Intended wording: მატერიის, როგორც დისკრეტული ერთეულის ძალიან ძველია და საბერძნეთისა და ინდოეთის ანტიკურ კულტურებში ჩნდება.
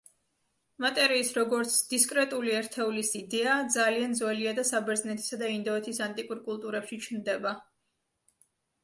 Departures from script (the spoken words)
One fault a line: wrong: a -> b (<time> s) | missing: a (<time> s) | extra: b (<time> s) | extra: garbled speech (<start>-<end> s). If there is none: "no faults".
extra: იდეა (3.2 s)